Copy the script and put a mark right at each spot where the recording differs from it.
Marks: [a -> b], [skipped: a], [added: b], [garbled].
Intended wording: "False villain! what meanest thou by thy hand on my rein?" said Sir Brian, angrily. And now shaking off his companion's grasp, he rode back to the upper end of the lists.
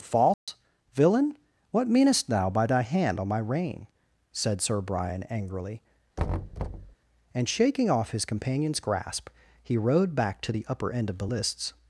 "False villain! what meanest thou by thy hand on my rein?" said Sir Brian, angrily. And [skipped: now] shaking off his companion's grasp, he rode back to the upper end of the lists.